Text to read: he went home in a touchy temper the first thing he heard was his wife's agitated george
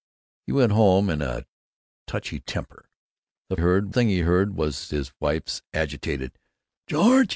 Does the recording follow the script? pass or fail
fail